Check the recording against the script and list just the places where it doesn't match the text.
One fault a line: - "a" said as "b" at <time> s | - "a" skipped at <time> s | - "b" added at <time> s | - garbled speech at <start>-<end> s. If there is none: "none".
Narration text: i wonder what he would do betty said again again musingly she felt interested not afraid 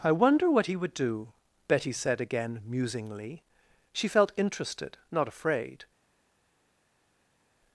- "again" skipped at 2.6 s